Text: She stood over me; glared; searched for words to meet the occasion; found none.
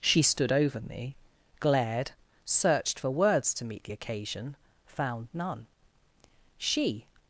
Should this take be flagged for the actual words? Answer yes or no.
yes